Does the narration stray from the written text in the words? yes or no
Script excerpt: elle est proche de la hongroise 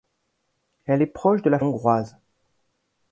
no